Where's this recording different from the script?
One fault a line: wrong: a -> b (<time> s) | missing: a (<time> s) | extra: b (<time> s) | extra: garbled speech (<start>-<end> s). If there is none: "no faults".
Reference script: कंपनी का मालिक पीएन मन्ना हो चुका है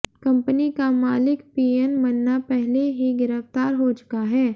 extra: पहले ही गिरफ्तार (2.5 s)